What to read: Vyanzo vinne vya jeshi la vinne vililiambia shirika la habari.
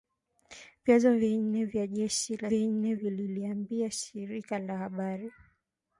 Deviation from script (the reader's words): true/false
false